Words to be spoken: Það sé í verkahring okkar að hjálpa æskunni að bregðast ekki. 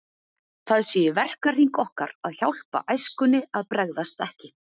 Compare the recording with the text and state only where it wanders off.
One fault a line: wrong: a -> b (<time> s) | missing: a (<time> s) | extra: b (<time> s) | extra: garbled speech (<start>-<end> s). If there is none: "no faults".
no faults